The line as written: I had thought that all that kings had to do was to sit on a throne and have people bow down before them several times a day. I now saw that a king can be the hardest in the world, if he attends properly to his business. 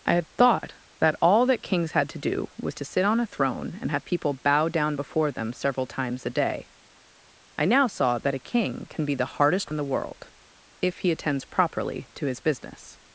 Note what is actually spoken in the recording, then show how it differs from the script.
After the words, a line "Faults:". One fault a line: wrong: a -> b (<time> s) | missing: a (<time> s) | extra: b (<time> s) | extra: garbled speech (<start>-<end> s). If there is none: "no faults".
I had thought that all that kings had to do was to sit on a throne and have people bow down before them several times a day. I now saw that a king can be the hardest in the world, if he attends properly to his business.
Faults:
no faults